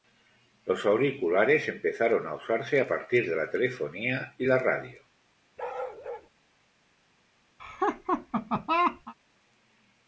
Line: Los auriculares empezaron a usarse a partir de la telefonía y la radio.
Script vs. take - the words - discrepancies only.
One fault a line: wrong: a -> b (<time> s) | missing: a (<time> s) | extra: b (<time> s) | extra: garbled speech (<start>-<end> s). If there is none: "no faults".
no faults